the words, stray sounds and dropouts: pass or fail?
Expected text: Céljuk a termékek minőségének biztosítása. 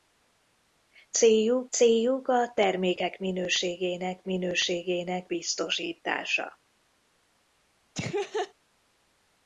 fail